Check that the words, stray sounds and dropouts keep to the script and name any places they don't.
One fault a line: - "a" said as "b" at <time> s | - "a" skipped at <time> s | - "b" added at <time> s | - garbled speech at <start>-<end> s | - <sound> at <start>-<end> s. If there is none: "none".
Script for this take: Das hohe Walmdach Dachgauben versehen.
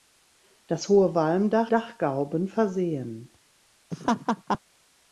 - laugh at 3.9-4.6 s